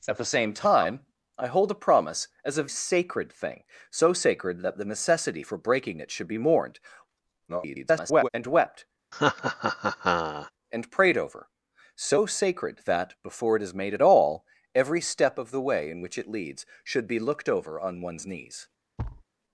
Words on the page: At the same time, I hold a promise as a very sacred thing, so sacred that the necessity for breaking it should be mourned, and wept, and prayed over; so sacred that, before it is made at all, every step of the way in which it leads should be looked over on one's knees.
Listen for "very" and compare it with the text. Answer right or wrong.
wrong